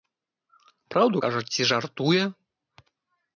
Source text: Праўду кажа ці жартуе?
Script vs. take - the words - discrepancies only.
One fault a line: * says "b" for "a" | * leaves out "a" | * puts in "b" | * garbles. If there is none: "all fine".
all fine